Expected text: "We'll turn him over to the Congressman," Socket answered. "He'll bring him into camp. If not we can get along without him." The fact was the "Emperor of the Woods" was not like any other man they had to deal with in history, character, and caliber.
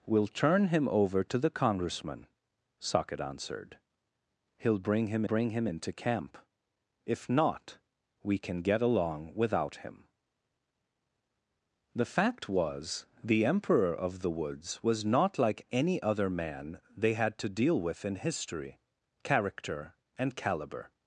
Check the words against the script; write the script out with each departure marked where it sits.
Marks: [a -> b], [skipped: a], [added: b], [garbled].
"We'll turn him over to the Congressman," Socket answered. "He'll bring him [added: bring him] into camp. If not we can get along without him." The fact was the "Emperor of the Woods" was not like any other man they had to deal with in history, character, and caliber.